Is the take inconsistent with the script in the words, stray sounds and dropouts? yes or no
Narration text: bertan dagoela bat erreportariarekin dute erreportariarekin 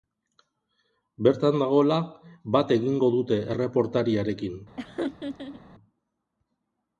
yes